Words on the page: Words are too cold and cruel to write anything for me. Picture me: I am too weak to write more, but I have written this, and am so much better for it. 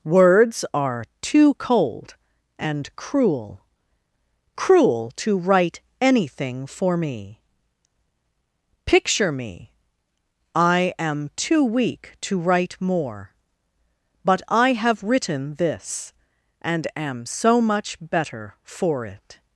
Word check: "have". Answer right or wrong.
right